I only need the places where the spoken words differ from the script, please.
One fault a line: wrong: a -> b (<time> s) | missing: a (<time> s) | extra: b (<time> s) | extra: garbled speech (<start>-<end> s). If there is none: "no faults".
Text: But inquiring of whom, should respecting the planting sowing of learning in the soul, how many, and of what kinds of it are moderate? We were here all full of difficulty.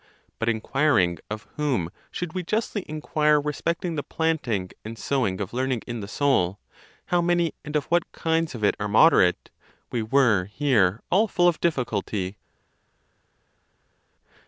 extra: we justly inquire (2.3 s)
extra: and (4.8 s)